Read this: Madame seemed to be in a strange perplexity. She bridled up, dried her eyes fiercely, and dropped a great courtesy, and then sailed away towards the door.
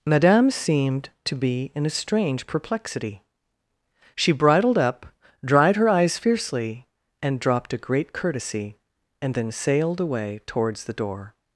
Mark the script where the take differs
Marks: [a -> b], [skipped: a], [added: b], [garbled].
Madame seemed to be in a strange perplexity. She bridled up, dried her eyes fiercely, and dropped a great courtesy, and then sailed away towards the door.